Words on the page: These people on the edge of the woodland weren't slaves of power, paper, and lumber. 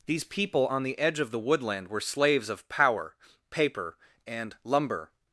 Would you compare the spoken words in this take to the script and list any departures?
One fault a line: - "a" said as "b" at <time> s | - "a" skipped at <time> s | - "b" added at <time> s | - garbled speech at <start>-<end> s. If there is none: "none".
- "weren't" said as "were" at 1.9 s